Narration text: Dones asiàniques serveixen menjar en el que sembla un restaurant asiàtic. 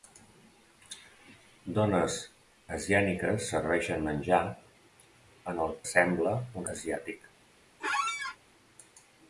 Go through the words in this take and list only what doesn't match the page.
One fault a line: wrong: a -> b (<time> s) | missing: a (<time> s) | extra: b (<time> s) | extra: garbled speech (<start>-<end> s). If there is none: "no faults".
missing: que (5.7 s)
missing: restaurant (6.7 s)